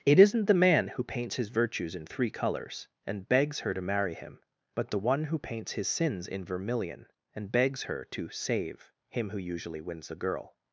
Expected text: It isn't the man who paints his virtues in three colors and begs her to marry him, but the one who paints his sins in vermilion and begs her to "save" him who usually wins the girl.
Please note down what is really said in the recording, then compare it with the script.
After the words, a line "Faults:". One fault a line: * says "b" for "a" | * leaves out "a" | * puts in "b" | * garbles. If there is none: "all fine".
It isn't the man who paints his virtues in three colors and begs her to marry him, but the one who paints his sins in vermilion and begs her to "save" him who usually wins the girl.
Faults:
all fine